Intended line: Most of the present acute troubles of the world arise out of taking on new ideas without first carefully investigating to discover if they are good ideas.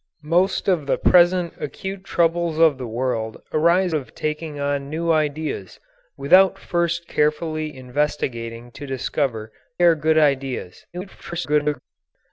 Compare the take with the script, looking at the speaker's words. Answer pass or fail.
fail